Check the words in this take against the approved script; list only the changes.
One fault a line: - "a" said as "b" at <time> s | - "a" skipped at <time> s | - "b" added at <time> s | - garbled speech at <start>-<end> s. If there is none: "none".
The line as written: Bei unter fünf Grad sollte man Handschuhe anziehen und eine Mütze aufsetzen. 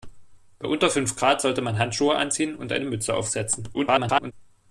- garbled speech at 3.7-4.3 s